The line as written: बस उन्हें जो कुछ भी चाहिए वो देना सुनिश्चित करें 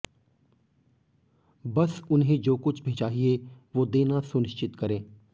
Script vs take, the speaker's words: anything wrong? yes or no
no